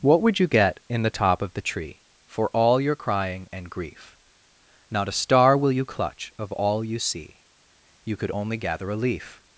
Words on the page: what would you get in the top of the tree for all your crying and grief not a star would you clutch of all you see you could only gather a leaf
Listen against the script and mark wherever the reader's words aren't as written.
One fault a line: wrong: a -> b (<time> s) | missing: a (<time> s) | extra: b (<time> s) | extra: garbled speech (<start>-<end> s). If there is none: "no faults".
wrong: would -> will (5.5 s)